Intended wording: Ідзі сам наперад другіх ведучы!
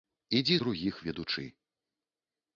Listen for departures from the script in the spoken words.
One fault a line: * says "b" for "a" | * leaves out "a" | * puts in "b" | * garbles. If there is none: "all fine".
* leaves out "сам наперад"